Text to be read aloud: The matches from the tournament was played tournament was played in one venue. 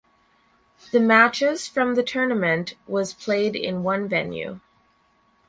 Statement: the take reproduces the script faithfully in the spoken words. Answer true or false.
false